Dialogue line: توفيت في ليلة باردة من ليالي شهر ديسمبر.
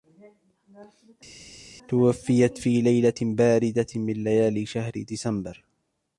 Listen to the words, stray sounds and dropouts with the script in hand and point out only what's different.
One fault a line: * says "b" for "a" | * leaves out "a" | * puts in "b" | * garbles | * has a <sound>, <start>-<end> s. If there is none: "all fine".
all fine